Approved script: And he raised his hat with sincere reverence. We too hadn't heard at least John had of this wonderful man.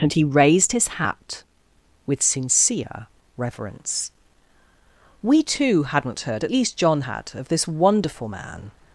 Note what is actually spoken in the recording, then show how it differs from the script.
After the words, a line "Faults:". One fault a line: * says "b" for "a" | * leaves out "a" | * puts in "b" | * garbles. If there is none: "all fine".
And he raised his hat with sincere reverence. We too hadn't heard at least John had of this wonderful man.
Faults:
all fine